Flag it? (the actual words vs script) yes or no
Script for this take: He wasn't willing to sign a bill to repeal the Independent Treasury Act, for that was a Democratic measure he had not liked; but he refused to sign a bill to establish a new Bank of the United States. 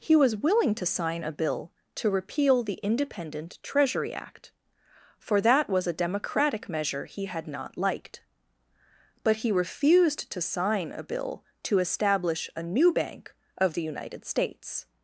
yes